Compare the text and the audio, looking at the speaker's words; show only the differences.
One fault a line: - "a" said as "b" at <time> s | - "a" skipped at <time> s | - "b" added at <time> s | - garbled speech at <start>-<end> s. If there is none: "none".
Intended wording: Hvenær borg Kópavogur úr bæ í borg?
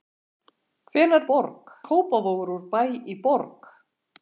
none